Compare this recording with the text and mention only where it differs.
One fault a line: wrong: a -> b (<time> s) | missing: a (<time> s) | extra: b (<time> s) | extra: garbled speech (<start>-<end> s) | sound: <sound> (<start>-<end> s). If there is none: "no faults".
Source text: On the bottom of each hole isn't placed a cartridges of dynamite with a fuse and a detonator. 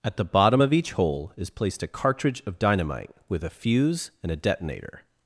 wrong: On -> At (0.0 s)
wrong: isn't -> is (1.4 s)
wrong: cartridges -> cartridge (1.9 s)